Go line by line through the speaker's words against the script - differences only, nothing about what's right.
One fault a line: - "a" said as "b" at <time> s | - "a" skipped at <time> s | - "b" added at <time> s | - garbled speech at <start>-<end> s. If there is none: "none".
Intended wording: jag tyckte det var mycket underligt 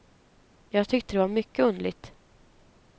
none